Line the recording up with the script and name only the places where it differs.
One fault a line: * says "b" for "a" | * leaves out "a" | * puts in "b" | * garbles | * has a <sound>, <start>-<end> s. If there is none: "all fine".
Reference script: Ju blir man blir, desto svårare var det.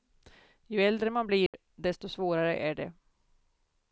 * says "äldre" for "blir"
* has a dropout, 1.5-1.5 s
* says "är" for "var"